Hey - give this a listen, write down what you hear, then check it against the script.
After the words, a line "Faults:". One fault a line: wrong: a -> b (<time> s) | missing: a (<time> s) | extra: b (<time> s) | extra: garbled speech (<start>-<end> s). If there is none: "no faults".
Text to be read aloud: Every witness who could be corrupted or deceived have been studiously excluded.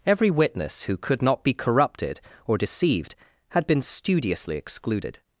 Every witness who could not be corrupted or deceived had been studiously excluded.
Faults:
extra: not (1.2 s)
wrong: have -> had (3.5 s)